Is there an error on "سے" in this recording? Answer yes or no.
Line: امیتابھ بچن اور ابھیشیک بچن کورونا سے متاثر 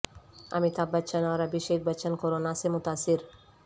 no